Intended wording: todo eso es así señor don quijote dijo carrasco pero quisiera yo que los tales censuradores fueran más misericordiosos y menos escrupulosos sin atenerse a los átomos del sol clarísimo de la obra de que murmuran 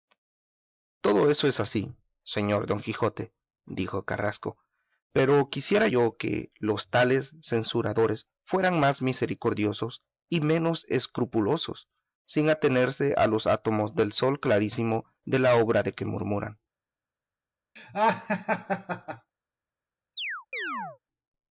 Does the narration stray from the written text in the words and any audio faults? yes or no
yes